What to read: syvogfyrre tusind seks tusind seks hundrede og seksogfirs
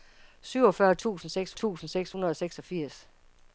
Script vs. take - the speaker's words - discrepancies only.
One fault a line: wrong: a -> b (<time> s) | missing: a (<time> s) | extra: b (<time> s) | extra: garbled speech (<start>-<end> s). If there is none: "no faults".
no faults